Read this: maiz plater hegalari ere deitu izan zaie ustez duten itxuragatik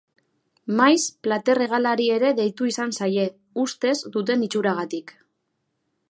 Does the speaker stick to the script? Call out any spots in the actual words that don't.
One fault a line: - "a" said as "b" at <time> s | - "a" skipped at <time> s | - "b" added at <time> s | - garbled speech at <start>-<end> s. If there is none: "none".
none